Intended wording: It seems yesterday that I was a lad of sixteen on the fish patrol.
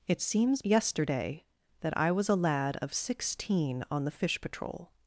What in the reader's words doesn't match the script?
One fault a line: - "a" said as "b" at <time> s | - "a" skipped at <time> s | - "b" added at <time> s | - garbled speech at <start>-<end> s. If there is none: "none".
none